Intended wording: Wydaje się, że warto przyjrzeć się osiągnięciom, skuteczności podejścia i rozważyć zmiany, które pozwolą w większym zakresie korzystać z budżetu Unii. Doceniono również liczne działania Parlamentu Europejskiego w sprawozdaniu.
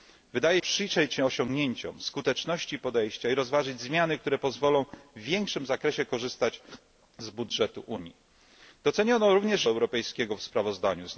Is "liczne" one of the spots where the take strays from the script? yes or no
yes